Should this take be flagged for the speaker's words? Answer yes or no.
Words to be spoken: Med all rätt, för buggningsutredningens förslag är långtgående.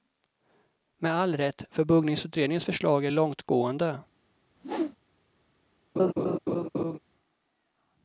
no